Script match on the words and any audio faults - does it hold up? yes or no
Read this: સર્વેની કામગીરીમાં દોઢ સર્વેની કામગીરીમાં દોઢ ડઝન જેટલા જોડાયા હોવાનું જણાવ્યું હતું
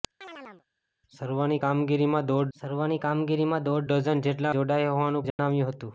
no